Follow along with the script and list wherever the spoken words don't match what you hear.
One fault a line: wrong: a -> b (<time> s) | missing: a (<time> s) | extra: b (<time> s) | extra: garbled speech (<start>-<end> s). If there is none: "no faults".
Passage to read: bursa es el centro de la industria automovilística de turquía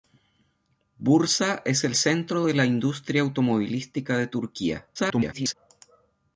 extra: garbled speech (5.0-5.5 s)